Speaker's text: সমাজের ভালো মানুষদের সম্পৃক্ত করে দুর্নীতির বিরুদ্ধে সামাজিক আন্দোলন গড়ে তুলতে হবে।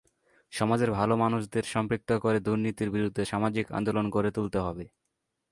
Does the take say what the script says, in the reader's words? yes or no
yes